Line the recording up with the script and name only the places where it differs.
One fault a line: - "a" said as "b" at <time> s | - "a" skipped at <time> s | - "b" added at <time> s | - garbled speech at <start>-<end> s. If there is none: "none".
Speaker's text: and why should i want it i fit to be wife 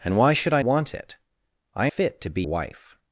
none